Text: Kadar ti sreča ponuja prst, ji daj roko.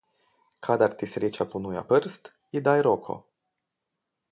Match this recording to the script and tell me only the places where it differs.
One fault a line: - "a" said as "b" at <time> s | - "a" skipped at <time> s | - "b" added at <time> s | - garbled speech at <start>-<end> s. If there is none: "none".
none